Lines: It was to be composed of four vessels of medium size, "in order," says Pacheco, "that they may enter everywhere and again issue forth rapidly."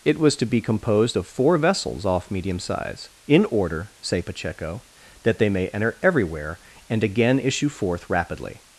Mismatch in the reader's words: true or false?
true